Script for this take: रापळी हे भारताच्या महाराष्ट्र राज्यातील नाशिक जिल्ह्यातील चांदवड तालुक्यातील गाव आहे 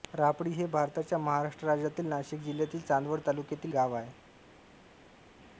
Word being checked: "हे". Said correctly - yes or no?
yes